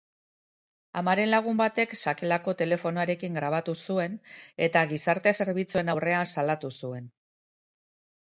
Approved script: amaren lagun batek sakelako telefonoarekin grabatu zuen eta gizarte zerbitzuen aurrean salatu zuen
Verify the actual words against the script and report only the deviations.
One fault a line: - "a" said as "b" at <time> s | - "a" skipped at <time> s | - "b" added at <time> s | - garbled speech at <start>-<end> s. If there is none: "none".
none